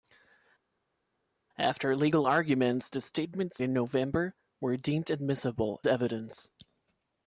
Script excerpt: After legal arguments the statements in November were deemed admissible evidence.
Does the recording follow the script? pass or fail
pass